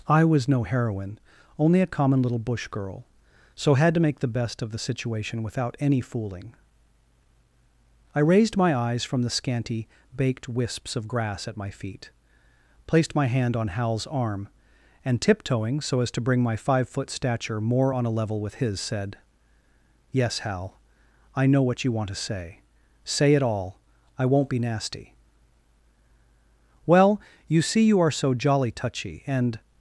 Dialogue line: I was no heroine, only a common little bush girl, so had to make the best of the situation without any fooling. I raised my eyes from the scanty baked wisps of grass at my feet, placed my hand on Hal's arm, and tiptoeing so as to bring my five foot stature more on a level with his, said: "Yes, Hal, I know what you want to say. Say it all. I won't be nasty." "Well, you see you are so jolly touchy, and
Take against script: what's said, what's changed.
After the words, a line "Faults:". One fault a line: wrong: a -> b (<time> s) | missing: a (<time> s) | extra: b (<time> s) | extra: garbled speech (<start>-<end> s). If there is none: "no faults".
I was no heroine, only a common little bush girl, so had to make the best of the situation without any fooling. I raised my eyes from the scanty baked wisps of grass at my feet, placed my hand on Hal's arm, and tiptoeing so as to bring my five foot stature more on a level with his, said: "Yes, Hal, I know what you want to say. Say it all. I won't be nasty." "Well, you see you are so jolly touchy, and
Faults:
no faults